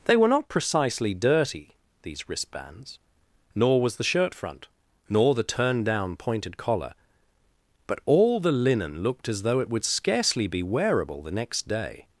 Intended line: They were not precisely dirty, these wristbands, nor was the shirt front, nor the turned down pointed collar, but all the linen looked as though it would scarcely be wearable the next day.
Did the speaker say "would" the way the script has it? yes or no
yes